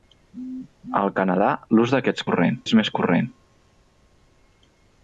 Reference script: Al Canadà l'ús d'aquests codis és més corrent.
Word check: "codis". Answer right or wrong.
wrong